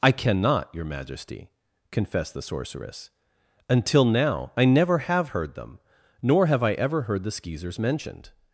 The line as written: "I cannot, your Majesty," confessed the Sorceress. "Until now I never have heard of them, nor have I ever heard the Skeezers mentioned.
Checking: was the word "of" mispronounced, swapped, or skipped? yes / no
yes